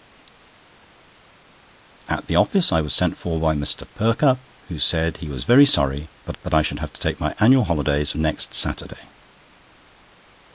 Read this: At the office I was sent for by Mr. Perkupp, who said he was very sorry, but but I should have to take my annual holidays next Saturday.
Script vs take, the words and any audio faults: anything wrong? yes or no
no